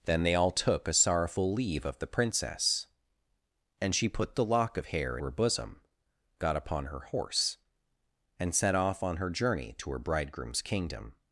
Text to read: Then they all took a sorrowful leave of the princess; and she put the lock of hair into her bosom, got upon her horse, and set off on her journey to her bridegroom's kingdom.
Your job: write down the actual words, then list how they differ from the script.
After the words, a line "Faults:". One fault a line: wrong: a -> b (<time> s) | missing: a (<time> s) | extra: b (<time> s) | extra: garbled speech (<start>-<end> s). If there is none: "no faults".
Then they all took a sorrowful leave of the princess; and she put the lock of hair her bosom, got upon her horse, and set off on her journey to her bridegroom's kingdom.
Faults:
missing: into (5.2 s)